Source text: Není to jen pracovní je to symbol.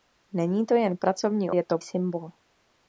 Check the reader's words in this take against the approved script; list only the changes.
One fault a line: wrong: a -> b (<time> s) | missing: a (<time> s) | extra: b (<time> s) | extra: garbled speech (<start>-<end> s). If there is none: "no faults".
no faults